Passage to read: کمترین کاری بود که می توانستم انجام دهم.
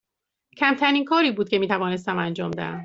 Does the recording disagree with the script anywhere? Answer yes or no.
no